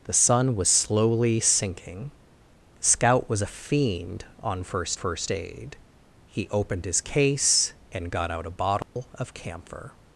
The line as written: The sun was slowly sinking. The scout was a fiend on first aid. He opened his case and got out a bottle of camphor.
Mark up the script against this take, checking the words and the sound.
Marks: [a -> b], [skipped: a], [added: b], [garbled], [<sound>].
The sun was slowly sinking. The scout was a fiend on first [added: first] aid. He opened his case and got out a bottle [dropout] of camphor.